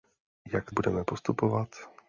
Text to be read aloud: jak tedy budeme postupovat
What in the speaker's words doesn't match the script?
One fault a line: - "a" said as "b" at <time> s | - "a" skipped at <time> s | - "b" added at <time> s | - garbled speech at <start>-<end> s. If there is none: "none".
- "tedy" skipped at 0.7 s